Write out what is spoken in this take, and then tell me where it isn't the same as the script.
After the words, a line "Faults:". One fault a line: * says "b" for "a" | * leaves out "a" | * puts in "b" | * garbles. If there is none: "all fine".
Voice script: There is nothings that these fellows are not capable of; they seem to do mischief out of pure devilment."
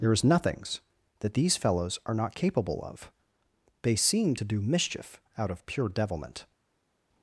There is nothings that these fellows are not capable of; they seem to do mischief out of pure devilment."
Faults:
all fine